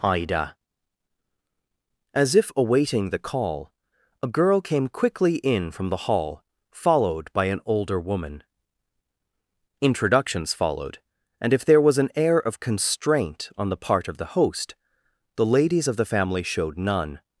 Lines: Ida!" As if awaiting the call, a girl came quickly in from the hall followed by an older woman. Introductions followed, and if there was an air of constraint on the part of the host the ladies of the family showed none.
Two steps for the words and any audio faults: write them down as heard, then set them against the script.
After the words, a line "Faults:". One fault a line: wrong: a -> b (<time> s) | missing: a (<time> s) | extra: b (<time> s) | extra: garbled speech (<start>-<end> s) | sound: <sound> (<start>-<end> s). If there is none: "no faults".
Ida!" As if awaiting the call, a girl came quickly in from the hall followed by an older woman. Introductions followed, and if there was an air of constraint on the part of the host the ladies of the family showed none.
Faults:
no faults